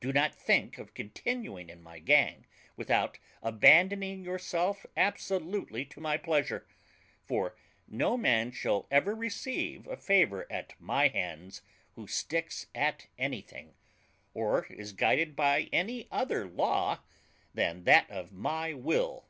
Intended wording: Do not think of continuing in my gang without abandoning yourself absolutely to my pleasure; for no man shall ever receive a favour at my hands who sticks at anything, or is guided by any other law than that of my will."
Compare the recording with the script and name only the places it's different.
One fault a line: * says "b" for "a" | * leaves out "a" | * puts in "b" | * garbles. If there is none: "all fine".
all fine